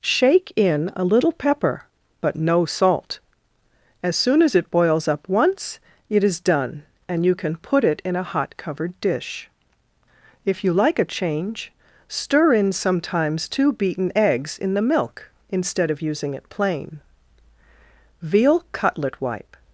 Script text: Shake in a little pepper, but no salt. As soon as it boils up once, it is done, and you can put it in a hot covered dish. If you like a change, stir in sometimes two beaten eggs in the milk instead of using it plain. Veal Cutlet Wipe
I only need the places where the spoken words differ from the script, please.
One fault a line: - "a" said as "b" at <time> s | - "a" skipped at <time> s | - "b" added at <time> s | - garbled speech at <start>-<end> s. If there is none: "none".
none